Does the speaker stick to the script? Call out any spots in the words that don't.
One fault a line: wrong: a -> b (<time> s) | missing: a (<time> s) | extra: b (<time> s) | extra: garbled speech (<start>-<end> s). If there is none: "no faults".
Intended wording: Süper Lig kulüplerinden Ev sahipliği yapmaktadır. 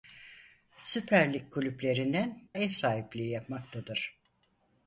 no faults